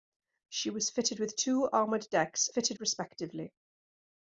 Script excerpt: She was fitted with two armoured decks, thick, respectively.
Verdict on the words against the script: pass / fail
fail